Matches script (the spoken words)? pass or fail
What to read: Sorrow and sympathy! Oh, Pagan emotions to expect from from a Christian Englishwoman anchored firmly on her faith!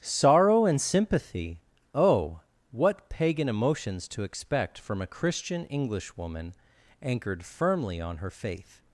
fail